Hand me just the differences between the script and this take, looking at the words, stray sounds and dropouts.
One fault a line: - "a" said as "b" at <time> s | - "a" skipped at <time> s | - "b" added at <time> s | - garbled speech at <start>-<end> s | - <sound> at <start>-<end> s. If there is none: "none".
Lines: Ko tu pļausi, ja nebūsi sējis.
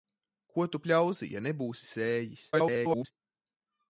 - garbled speech at 2.5-3.1 s